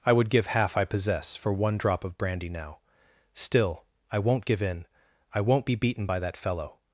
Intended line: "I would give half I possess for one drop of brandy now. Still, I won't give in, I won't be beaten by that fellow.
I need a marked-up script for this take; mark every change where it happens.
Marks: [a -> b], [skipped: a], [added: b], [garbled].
"I would give half I possess for one drop of brandy now. Still, I won't give in, I won't be beaten by that fellow.